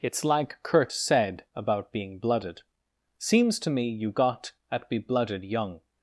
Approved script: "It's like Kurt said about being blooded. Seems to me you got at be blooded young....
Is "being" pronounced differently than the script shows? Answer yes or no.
no